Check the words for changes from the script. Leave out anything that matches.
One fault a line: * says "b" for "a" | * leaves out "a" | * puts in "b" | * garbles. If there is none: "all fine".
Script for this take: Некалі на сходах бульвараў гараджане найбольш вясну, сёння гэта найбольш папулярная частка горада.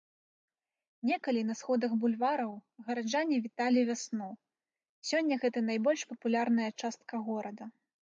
* says "віталі" for "найбольш"